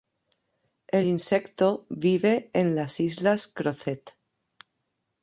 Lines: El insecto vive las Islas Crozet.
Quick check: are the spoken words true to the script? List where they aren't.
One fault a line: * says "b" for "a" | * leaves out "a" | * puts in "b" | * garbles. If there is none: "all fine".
* puts in "en"